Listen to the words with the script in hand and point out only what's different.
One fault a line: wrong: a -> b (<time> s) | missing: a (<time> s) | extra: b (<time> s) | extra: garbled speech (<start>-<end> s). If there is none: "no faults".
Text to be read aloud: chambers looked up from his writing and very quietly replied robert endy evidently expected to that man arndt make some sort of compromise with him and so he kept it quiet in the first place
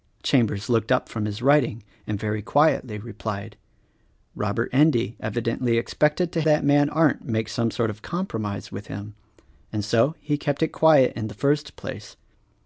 no faults